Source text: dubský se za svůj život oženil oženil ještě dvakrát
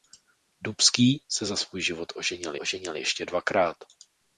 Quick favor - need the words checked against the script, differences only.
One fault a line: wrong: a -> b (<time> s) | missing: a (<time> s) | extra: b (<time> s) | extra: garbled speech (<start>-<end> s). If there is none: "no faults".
no faults